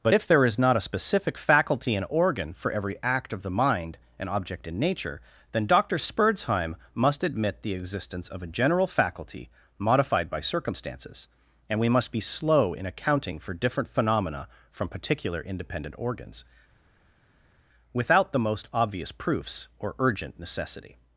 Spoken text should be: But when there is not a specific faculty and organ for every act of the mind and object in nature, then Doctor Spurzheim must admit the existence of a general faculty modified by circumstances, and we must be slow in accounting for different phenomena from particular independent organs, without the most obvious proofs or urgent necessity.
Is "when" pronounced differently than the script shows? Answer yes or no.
yes